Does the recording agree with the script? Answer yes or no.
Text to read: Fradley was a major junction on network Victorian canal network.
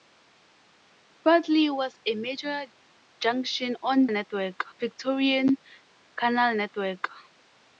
yes